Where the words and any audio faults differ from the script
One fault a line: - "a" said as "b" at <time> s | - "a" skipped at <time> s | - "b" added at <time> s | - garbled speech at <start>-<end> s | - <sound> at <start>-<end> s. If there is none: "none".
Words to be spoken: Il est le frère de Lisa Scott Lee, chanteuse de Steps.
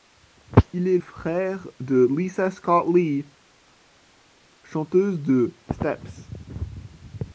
- "le" skipped at 1.0 s